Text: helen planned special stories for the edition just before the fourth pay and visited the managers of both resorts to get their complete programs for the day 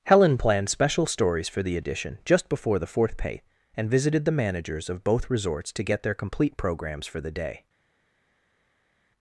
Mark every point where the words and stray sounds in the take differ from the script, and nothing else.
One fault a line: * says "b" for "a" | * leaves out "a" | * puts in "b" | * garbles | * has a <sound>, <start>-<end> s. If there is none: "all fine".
all fine